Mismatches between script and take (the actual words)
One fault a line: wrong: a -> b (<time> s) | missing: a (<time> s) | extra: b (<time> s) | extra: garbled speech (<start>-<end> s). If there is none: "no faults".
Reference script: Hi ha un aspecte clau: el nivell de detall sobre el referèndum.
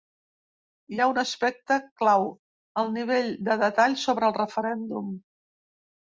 no faults